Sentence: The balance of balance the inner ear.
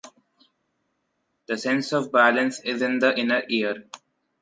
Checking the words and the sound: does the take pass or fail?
fail